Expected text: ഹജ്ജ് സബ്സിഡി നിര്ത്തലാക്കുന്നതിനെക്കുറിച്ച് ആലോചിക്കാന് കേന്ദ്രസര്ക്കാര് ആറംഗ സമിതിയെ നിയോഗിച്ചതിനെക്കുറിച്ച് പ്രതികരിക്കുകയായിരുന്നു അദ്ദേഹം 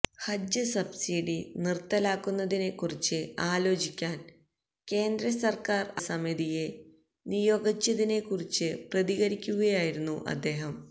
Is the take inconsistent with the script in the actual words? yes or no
yes